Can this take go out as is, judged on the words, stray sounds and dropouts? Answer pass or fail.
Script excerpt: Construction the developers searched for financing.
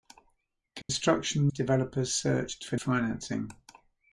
fail